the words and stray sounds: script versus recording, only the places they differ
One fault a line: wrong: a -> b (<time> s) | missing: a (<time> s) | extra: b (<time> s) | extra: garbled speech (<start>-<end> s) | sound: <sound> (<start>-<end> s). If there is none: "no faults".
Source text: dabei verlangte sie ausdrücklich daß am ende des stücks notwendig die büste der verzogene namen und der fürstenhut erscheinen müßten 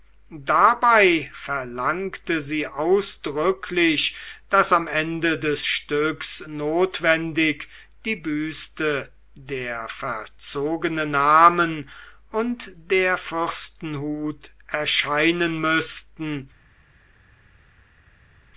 no faults